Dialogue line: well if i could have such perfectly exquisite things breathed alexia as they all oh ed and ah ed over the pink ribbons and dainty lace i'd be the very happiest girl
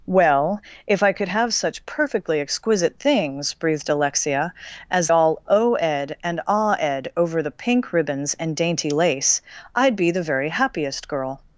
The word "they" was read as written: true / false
false